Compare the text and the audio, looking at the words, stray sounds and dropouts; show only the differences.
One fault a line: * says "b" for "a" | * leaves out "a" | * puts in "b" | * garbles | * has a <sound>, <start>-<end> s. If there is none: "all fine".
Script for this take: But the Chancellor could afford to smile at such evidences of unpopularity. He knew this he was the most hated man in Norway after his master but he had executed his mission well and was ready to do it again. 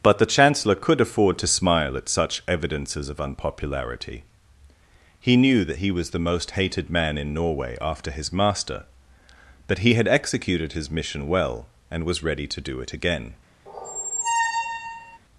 * says "that" for "this"
* has a squeak, 13.7-15.2 s